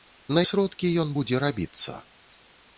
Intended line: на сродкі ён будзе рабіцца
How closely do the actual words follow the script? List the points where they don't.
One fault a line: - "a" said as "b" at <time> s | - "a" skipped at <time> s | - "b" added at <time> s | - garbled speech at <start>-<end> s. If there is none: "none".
none